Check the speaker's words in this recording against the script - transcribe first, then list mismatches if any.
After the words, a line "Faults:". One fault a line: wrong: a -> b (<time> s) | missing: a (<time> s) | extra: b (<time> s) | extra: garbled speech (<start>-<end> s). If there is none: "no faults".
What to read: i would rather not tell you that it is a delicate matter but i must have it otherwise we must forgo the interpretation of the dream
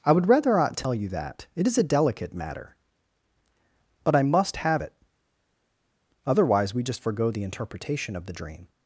i would rather not tell you that it is a delicate matter but i must have it otherwise we just forgo the interpretation of the dream
Faults:
wrong: must -> just (6.8 s)